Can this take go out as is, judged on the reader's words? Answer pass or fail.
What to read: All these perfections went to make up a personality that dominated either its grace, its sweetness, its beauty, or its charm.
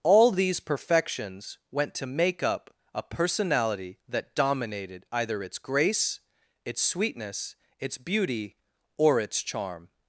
pass